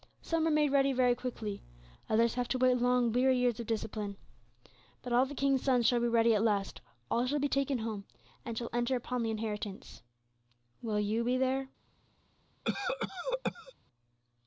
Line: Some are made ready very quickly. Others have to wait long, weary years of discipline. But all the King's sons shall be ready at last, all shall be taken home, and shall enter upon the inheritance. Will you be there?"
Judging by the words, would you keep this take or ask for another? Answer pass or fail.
pass